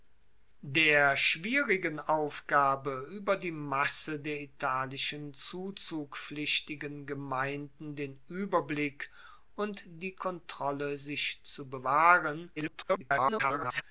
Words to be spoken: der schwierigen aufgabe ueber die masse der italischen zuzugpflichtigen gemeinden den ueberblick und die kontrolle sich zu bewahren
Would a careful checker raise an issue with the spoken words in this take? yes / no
yes